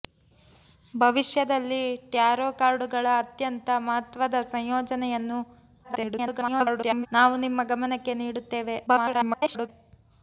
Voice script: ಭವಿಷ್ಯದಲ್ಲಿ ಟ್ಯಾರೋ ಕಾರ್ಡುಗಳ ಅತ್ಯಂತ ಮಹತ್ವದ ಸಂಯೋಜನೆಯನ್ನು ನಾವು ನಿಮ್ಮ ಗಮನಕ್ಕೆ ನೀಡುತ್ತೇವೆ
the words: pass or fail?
fail